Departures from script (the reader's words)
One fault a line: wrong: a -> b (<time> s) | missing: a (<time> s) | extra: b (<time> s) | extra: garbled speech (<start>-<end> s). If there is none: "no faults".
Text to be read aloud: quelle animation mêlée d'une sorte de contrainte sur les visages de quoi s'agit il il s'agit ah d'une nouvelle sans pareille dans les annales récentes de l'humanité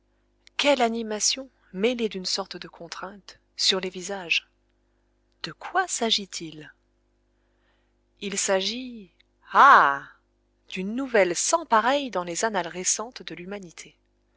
no faults